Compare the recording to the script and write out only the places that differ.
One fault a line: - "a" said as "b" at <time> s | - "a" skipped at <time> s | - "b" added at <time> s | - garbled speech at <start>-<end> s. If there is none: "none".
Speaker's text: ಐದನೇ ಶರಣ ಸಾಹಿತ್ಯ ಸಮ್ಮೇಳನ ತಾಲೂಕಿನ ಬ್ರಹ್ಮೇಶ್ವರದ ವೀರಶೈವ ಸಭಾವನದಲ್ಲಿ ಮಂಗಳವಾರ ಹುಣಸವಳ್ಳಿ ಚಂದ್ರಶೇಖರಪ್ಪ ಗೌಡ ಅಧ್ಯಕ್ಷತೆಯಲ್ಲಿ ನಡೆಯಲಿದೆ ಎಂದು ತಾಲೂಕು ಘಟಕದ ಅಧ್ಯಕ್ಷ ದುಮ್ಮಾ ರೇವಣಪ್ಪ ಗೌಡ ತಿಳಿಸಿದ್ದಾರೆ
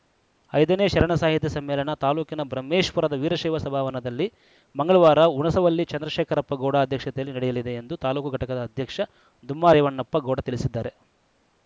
none